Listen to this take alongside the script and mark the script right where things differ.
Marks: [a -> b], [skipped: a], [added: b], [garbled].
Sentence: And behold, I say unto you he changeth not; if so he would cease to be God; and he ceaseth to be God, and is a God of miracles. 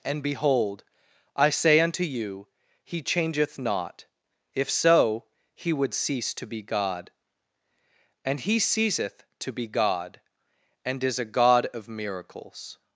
And behold, I say unto you he changeth not; if so he would cease to be God; and he ceaseth to be God, and is a God of miracles.